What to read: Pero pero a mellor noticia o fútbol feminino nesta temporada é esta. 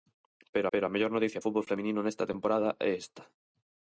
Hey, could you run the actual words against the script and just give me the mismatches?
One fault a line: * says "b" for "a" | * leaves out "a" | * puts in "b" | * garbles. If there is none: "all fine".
all fine